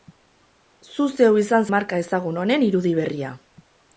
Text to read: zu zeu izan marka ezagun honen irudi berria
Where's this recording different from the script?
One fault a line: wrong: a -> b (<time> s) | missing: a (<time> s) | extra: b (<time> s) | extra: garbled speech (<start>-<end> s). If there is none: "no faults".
no faults